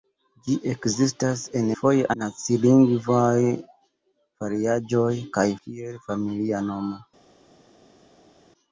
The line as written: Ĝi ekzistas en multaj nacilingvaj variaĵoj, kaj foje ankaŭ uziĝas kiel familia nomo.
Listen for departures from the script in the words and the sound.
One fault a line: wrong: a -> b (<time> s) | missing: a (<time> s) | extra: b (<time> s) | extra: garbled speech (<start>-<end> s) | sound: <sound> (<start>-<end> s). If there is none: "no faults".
wrong: multaj -> foje (1.8 s)
missing: foje ankaŭ uziĝas (5.5 s)